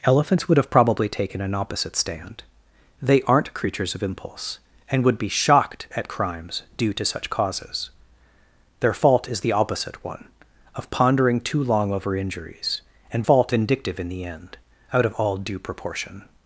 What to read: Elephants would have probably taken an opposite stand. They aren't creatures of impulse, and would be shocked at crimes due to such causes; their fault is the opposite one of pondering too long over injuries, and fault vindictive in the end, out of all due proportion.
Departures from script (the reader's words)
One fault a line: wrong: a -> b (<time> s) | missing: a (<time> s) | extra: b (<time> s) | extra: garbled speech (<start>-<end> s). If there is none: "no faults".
no faults